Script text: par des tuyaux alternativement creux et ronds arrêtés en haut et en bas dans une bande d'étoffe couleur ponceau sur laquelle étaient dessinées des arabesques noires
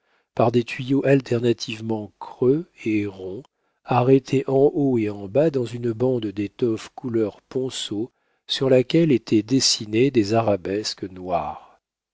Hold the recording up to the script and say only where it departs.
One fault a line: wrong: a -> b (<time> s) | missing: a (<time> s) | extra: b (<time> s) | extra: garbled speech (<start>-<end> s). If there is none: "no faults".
no faults